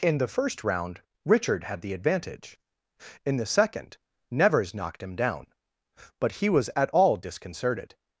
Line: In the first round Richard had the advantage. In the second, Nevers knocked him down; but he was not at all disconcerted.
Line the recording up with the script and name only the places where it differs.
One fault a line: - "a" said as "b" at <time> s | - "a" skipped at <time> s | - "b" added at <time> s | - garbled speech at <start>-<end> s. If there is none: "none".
- "not" skipped at 6.7 s